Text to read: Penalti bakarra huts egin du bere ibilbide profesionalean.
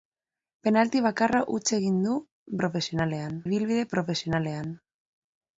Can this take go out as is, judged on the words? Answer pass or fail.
fail